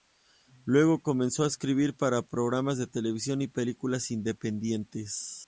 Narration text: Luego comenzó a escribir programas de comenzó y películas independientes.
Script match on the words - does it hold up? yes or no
no